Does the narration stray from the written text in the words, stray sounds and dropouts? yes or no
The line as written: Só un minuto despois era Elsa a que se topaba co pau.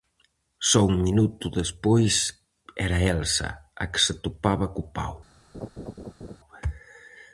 yes